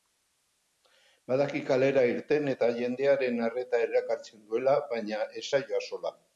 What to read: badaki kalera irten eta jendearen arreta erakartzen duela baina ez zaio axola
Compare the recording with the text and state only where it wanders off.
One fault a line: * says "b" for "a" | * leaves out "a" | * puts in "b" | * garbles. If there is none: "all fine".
all fine